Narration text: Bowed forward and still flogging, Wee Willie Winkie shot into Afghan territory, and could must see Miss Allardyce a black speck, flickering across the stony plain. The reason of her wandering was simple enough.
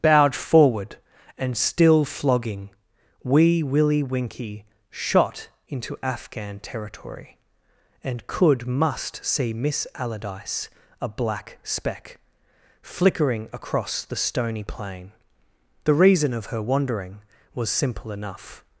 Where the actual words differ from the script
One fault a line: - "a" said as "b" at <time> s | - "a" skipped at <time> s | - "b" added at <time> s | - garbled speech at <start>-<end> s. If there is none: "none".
none